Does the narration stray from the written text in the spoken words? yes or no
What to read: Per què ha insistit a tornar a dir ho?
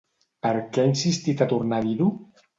no